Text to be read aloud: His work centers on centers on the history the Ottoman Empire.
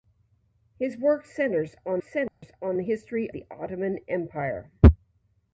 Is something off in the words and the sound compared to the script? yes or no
yes